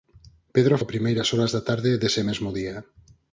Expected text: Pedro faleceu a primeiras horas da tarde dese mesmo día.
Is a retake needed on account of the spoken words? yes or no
yes